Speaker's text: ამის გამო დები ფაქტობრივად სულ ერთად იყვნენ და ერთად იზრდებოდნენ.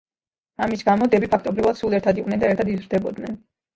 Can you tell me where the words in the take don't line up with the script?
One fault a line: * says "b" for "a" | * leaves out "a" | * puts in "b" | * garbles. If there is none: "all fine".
all fine